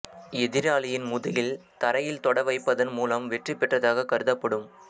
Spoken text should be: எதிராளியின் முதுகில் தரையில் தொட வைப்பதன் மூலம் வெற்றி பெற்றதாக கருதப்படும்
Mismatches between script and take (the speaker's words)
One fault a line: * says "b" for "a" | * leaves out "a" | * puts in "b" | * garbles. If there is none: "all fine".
all fine